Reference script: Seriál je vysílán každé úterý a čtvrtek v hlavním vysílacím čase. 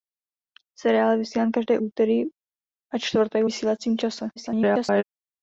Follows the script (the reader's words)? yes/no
no